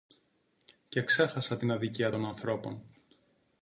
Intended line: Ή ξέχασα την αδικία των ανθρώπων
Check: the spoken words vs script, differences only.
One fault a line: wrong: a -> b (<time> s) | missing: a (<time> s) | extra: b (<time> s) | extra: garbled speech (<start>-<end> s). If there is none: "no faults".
wrong: Ή -> Και (0.9 s)